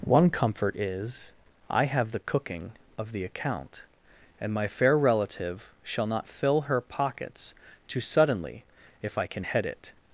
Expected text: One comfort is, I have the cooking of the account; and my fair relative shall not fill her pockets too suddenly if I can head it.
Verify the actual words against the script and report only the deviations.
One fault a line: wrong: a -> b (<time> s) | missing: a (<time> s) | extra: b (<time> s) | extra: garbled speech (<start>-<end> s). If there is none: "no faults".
no faults